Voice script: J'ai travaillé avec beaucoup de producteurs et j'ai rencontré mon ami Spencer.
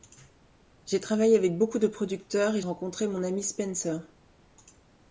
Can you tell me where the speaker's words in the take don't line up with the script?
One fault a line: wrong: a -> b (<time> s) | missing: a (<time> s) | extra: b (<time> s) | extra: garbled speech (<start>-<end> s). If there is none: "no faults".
missing: j'ai (2.6 s)